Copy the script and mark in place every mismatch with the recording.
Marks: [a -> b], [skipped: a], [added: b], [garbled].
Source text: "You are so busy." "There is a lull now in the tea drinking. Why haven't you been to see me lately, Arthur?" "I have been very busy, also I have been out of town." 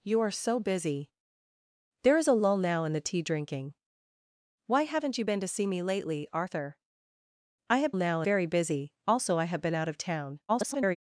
"You are so busy." "There is a lull now in the tea drinking. Why haven't you been to see me lately, Arthur?" "I have [been -> now] very busy, also I have been out of town." [garbled]